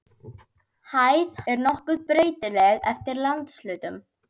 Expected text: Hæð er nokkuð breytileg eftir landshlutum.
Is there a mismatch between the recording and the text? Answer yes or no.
no